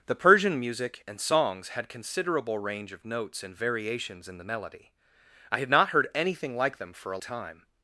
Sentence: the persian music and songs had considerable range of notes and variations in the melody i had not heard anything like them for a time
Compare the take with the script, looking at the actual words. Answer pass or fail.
pass